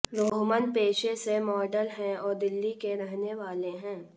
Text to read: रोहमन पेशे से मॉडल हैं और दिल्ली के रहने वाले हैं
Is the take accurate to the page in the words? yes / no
yes